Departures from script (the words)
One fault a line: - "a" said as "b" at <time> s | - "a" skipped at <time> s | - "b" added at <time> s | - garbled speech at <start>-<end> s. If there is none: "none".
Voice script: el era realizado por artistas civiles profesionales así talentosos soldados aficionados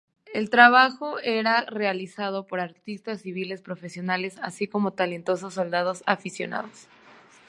- "trabajo" added at 0.5 s
- "como" added at 4.7 s